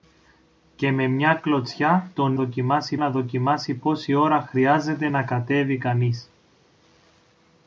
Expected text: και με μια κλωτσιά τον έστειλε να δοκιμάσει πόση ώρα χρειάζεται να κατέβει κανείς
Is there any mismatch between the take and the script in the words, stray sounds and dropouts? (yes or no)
yes